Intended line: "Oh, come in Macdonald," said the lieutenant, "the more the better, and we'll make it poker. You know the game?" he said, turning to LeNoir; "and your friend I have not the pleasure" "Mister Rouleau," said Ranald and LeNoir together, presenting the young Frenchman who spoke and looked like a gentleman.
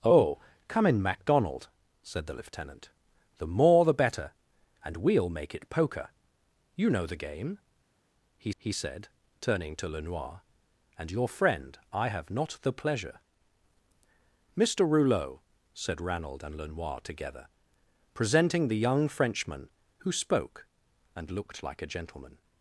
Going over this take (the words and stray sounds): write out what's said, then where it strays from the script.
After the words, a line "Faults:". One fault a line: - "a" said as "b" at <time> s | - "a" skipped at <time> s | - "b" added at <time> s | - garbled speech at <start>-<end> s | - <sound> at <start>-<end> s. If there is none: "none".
"Oh, come in Macdonald," said the lieutenant, "the more the better, and we'll make it poker. You know the game?" he he said, turning to LeNoir; "and your friend I have not the pleasure" "Mister Rouleau," said Ranald and LeNoir together, presenting the young Frenchman who spoke and looked like a gentleman.
Faults:
- "he" added at 8.6 s